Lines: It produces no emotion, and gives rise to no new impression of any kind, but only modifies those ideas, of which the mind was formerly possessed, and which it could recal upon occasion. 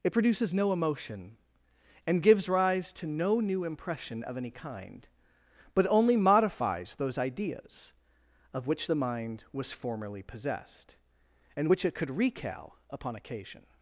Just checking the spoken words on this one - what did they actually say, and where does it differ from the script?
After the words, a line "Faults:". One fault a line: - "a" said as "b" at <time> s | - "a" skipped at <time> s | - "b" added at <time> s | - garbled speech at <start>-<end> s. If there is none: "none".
It produces no emotion, and gives rise to no new impression of any kind, but only modifies those ideas, of which the mind was formerly possessed, and which it could recal upon occasion.
Faults:
none